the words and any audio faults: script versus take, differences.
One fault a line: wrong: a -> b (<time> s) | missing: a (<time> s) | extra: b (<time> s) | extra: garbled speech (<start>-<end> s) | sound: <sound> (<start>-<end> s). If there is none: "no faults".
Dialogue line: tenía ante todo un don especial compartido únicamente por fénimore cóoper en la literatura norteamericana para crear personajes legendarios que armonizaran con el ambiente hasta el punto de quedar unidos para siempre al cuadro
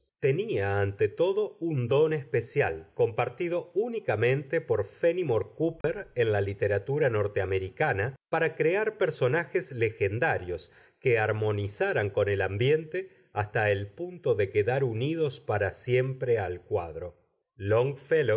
sound: dropout (5.8-5.8 s)